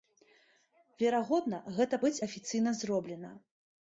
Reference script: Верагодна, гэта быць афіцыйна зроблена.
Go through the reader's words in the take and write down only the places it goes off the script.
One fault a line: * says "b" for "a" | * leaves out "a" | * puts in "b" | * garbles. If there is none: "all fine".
all fine